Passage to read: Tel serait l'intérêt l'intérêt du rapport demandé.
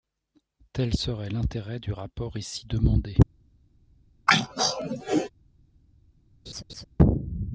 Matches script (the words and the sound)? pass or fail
fail